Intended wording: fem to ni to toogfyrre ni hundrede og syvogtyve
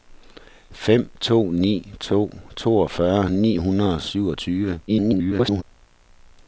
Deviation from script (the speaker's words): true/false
true